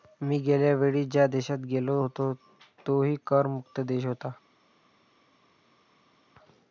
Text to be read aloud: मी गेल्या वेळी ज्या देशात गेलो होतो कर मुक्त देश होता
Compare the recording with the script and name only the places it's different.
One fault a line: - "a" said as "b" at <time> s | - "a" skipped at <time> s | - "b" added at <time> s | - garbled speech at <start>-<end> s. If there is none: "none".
- "तोही" added at 2.9 s